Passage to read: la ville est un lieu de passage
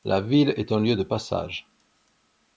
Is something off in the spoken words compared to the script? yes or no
no